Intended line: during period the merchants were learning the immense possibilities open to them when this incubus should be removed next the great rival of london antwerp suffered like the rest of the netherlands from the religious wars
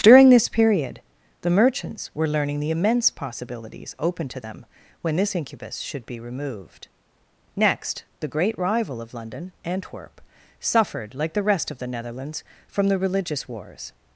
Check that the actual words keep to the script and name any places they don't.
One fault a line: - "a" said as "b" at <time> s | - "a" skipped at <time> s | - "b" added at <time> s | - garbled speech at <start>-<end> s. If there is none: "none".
- "this" added at 0.3 s